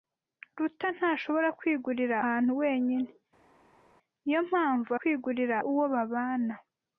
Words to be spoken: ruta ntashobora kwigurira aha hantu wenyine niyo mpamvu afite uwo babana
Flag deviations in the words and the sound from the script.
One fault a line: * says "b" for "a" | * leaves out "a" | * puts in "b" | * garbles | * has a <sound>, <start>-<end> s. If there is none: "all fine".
* leaves out "aha"
* says "kwigurira" for "afite"